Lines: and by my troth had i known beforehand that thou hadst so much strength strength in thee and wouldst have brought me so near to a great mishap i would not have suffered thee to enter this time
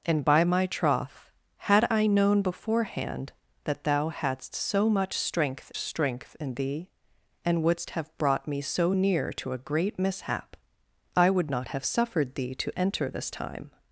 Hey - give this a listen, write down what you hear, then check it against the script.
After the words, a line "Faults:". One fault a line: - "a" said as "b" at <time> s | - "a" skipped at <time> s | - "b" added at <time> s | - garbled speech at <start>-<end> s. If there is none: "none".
and by my troth had i known beforehand that thou hadst so much strength strength in thee and wouldst have brought me so near to a great mishap i would not have suffered thee to enter this time
Faults:
none